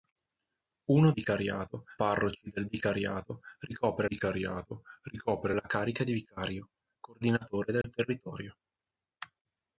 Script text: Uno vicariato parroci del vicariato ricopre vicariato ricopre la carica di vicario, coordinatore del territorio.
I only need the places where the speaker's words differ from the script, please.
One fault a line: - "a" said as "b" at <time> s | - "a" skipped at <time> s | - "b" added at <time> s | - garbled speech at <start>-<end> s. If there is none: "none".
none